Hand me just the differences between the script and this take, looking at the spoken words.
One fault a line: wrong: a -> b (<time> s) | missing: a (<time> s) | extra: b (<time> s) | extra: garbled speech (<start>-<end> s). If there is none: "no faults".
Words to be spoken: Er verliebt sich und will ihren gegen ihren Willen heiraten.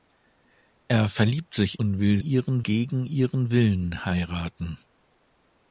no faults